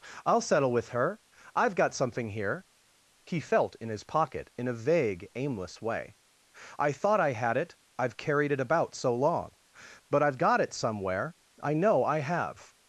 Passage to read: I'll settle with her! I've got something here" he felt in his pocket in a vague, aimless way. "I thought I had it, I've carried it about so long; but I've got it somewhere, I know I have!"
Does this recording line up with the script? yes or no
yes